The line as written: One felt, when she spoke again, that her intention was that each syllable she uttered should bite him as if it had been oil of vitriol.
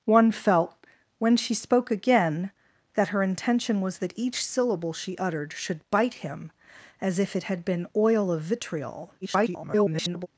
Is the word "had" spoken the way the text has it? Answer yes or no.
yes